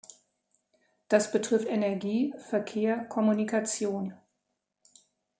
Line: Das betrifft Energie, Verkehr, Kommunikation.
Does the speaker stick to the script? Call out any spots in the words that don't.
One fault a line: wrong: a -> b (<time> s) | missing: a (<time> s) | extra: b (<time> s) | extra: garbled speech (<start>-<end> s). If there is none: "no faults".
no faults